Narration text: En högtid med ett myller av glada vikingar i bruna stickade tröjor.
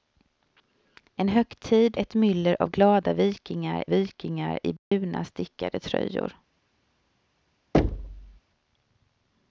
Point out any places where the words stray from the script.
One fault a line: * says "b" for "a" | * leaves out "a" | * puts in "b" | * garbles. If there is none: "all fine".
* leaves out "med"
* puts in "vikingar"